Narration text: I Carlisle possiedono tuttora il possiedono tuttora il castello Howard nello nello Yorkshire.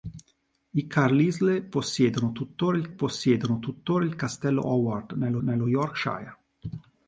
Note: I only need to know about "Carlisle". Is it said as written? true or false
true